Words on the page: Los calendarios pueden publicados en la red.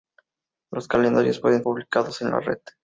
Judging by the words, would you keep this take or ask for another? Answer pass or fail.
pass